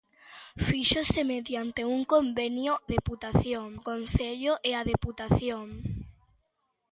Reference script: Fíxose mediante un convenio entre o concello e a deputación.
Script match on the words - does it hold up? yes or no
no